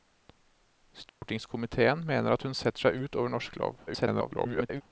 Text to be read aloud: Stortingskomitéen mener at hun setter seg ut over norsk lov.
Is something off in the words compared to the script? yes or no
yes